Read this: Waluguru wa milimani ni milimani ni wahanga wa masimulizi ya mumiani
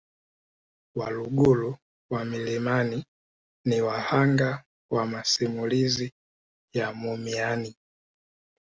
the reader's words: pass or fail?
fail